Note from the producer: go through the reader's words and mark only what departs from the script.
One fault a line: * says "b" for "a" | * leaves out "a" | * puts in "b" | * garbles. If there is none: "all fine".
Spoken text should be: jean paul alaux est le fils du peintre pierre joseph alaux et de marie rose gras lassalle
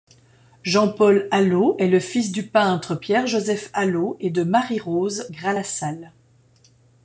all fine